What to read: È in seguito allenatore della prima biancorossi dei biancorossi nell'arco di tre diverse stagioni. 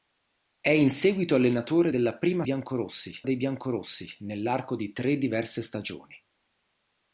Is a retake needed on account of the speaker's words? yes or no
no